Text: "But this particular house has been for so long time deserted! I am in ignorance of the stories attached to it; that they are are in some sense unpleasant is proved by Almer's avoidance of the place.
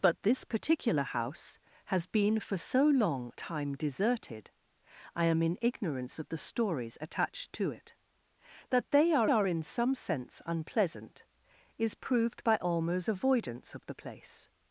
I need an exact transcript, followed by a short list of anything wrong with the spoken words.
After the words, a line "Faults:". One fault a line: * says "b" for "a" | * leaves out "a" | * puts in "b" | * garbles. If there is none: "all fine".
"But this particular house has been for so long time deserted! I am in ignorance of the stories attached to it; that they are are in some sense unpleasant is proved by Almer's avoidance of the place.
Faults:
all fine